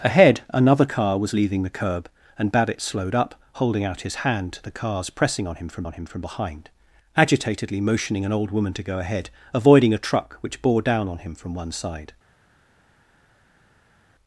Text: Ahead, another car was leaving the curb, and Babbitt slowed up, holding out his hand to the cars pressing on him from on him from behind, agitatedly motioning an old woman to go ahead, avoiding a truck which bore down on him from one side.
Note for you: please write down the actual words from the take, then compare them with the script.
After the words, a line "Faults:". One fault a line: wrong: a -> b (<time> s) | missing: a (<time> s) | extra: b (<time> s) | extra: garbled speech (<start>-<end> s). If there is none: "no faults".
Ahead, another car was leaving the curb, and Babbitt slowed up, holding out his hand to the cars pressing on him from on him from behind, agitatedly motioning an old woman to go ahead, avoiding a truck which bore down on him from one side.
Faults:
no faults